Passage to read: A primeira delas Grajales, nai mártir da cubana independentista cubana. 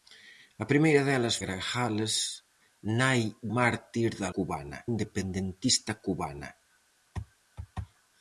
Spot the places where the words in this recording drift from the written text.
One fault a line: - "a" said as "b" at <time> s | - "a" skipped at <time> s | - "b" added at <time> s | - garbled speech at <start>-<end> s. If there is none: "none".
none